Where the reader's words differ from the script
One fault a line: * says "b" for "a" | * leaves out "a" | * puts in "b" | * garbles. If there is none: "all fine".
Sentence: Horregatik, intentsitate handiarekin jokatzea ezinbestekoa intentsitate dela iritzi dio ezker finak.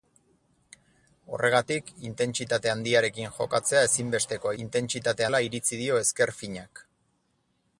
all fine